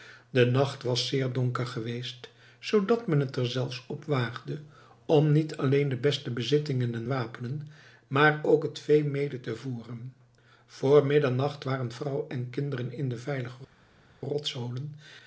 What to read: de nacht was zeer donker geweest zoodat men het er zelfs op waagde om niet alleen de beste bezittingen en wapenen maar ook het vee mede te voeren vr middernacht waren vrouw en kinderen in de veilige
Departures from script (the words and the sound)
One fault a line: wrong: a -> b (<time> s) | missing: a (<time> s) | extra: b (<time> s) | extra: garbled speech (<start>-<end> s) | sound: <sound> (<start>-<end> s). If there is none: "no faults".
no faults